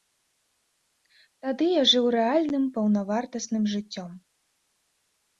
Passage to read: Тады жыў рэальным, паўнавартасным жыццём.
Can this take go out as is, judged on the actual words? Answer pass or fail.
fail